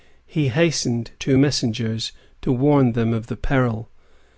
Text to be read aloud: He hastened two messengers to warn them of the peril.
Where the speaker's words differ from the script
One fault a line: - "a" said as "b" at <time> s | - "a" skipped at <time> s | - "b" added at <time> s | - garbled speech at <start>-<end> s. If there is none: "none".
none